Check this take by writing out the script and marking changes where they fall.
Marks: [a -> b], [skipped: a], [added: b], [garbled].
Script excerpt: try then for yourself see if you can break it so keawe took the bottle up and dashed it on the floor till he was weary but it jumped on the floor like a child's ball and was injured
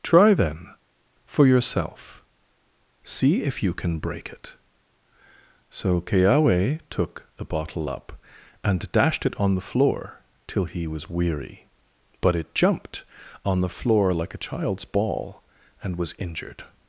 try then for yourself see if you can break it so keawe took the bottle up and dashed it on the floor till he was weary but it jumped on the floor like a child's ball and was injured